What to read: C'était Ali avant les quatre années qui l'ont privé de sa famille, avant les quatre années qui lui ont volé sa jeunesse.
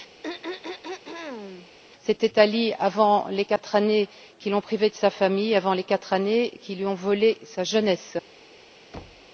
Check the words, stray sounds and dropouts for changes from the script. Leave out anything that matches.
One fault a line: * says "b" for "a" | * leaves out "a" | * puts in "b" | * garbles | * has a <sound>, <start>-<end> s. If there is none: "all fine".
* has a throat clearing, 0.2-1.7 s
* has a thud, 8.9-9.3 s